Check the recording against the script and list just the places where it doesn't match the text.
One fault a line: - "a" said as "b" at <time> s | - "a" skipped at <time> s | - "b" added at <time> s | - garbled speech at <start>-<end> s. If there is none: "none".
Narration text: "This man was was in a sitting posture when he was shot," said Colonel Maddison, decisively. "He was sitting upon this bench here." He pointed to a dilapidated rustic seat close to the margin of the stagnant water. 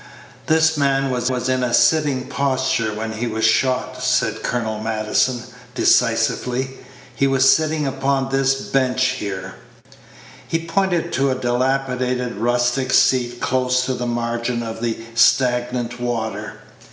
none